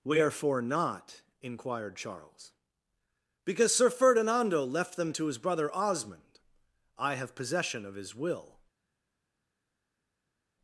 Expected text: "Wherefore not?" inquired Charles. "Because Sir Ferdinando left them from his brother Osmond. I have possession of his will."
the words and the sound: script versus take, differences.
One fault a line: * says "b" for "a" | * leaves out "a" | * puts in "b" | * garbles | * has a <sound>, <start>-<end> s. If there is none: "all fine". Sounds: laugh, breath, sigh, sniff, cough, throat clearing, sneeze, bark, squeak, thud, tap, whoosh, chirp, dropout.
* says "to" for "from"